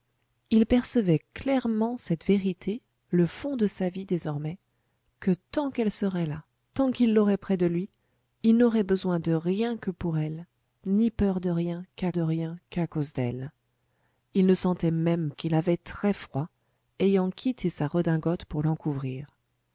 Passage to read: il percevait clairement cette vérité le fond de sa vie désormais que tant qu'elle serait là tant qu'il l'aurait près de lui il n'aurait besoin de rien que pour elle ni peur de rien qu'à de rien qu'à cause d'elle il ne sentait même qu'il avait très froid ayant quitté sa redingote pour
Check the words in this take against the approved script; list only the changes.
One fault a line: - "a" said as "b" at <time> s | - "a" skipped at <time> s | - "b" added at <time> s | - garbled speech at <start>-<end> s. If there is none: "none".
none